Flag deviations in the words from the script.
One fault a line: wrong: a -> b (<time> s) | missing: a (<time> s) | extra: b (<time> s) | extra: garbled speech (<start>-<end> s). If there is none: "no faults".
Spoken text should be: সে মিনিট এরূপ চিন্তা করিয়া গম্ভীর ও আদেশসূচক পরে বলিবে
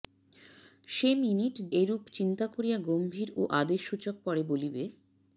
no faults